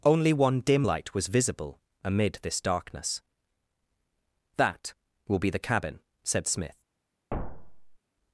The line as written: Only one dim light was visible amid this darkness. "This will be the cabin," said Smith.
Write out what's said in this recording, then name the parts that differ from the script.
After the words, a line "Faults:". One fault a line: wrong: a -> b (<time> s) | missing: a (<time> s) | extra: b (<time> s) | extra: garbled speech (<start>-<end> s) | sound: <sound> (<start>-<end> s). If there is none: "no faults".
Only one dim light was visible amid this darkness. "That will be the cabin," said Smith.
Faults:
wrong: This -> That (4.6 s)
sound: thud (7.3-8.0 s)